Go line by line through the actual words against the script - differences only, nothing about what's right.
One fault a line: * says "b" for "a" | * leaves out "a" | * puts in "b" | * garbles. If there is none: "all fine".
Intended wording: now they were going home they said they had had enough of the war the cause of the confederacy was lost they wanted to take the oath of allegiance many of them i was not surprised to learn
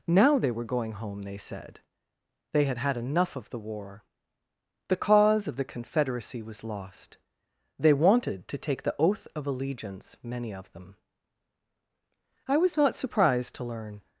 all fine